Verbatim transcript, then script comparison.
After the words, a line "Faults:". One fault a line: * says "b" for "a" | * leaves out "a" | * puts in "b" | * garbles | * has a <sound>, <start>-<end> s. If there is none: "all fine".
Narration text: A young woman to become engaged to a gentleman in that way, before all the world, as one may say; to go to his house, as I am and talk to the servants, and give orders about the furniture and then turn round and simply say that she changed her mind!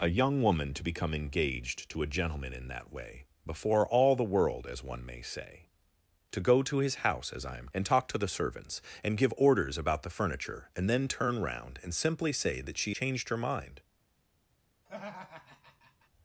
A young woman to become engaged to a gentleman in that way, before all the world, as one may say; to go to his house, as I am and talk to the servants, and give orders about the furniture and then turn round and simply say that she changed her mind!
Faults:
* has a laugh, 14.9-16.1 s